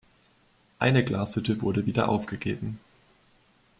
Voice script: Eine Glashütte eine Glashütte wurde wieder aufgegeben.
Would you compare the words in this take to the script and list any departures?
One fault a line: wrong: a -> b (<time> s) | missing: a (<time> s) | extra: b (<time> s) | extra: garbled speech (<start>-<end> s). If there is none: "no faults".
missing: eine Glashütte (1.6 s)